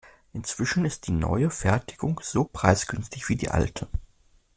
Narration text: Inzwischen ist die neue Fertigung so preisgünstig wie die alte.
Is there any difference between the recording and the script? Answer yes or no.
no